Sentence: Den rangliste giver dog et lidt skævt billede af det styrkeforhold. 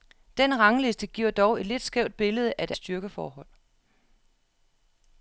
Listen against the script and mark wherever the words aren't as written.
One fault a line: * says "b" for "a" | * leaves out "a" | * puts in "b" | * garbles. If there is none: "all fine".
all fine